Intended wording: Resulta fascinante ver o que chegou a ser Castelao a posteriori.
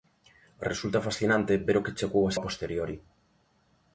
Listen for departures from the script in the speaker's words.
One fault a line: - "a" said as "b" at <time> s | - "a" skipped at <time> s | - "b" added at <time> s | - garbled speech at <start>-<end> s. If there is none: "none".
- "ser Castelao" skipped at 2.4 s